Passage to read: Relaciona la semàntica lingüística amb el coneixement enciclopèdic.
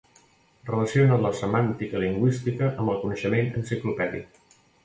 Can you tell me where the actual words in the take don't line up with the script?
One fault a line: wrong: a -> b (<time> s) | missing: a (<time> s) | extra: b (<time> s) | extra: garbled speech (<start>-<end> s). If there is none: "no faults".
no faults